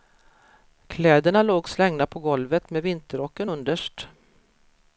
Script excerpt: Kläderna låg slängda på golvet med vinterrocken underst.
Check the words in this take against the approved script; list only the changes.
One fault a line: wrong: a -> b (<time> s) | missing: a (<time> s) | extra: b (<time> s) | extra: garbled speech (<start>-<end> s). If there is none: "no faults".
no faults